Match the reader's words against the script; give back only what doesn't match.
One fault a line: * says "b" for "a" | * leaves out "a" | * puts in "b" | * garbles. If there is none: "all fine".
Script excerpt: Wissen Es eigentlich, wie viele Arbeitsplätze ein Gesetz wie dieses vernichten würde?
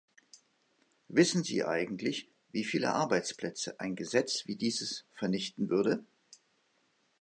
* says "Sie" for "Es"